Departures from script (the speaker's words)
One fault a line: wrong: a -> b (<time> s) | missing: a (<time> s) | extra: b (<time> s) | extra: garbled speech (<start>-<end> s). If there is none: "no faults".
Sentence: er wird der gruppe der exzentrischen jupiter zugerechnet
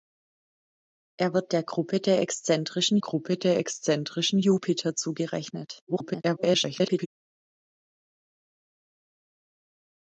extra: gruppe der exzentrischen (3.0 s)
extra: garbled speech (5.9-7.1 s)